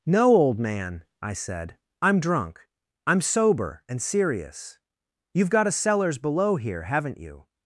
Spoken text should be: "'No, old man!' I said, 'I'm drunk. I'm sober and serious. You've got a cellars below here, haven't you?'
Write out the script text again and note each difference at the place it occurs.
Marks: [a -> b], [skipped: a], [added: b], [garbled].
"'No, old man!' I said, 'I'm drunk. I'm sober and serious. You've got a cellars below here, haven't you?'